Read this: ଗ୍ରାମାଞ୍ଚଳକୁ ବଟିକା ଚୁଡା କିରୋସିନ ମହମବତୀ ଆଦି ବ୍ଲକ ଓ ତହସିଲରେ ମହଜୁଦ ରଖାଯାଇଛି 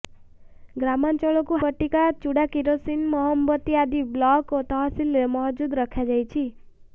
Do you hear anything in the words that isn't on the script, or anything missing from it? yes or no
no